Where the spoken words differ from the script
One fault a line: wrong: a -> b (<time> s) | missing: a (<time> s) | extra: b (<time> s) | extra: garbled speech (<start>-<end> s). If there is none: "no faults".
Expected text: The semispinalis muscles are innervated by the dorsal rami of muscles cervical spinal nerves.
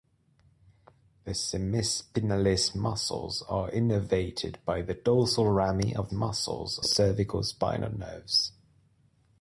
no faults